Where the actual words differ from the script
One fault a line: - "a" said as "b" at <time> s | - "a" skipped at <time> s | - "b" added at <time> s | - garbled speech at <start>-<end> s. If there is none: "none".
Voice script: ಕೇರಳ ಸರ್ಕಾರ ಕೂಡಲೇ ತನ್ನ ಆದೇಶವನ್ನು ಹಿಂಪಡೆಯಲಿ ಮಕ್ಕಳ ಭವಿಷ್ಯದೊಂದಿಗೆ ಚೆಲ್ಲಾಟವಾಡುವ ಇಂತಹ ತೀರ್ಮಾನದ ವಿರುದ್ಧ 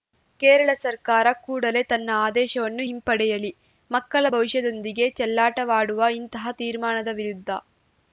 none